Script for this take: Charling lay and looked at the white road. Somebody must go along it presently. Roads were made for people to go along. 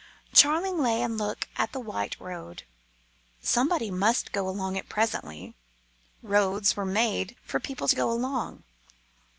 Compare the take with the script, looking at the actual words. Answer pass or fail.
pass